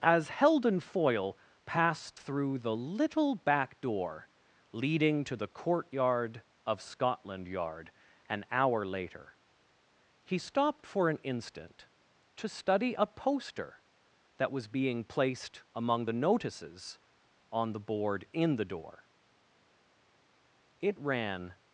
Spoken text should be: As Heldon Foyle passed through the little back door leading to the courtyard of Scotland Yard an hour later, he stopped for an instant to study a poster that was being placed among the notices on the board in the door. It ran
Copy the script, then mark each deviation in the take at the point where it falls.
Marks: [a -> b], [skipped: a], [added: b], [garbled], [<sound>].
As Heldon Foyle passed through the little back door leading to the courtyard of Scotland Yard an hour later, he stopped for an instant to study a poster that was being placed among the notices on the board in the door. It ran